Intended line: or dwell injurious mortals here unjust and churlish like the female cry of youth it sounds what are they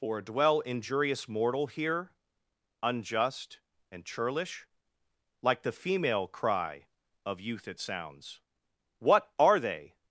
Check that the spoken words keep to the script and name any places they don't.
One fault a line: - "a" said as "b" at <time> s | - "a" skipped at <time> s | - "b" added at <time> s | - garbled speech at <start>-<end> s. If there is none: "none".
- "mortals" said as "mortal" at 1.3 s